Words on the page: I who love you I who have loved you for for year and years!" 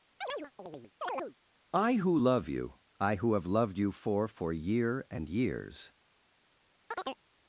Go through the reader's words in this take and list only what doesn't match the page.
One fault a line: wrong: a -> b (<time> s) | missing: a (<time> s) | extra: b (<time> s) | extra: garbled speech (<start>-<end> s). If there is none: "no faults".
no faults